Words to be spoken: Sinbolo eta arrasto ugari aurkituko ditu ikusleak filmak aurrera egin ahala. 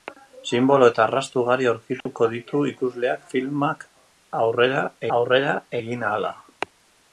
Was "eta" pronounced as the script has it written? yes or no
yes